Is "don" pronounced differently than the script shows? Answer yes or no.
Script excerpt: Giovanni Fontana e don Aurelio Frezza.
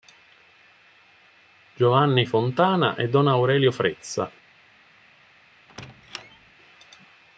no